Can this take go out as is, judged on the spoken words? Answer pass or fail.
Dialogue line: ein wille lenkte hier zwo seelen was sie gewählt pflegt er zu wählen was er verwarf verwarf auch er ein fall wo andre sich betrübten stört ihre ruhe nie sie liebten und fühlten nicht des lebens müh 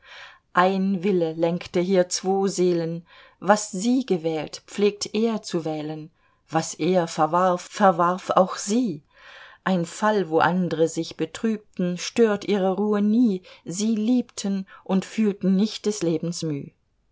fail